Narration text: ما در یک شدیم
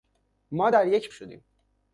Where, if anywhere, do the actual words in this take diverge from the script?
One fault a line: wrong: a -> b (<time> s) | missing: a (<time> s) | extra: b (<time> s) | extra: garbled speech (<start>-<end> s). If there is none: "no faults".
no faults